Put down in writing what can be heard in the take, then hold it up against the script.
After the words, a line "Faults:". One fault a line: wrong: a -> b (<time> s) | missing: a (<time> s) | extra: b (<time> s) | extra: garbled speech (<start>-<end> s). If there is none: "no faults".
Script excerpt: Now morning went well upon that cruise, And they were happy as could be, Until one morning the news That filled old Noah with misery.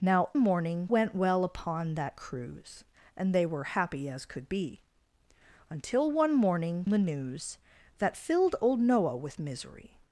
Now morning went well upon that cruise, And they were happy as could be, Until one morning the news That filled old Noah with misery.
Faults:
no faults